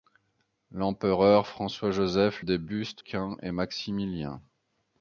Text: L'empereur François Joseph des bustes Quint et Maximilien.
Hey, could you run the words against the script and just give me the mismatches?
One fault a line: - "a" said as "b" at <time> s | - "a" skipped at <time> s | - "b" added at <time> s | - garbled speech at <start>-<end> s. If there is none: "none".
none